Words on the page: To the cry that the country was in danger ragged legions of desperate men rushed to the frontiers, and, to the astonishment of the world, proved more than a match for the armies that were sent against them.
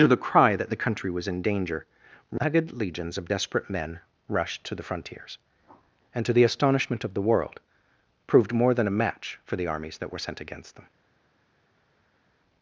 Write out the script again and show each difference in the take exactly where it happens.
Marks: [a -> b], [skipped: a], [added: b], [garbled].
To the cry that the country was in danger ragged legions of desperate men rushed to the frontiers, and, to the astonishment of the world, proved more than a match for the armies that were sent against them.